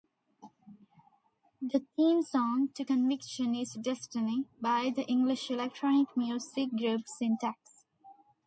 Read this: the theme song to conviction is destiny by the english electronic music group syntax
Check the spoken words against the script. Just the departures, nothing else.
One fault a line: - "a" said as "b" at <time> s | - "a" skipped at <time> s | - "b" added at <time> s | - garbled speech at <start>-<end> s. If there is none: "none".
none